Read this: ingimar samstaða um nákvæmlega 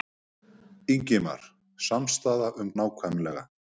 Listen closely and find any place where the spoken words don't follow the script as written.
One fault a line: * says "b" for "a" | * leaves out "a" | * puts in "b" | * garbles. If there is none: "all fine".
all fine